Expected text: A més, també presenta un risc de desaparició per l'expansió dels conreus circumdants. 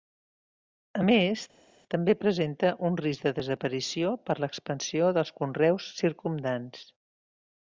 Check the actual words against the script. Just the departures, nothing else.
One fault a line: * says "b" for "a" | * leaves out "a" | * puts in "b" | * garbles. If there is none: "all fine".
all fine